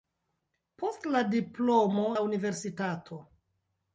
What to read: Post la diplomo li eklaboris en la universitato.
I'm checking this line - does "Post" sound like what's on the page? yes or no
yes